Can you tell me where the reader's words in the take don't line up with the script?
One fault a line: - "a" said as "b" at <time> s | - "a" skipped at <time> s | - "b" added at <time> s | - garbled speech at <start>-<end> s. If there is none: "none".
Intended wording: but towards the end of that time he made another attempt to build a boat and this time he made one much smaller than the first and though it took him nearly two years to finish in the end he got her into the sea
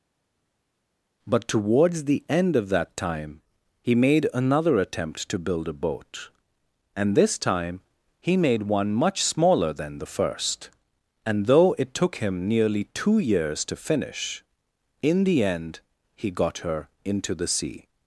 none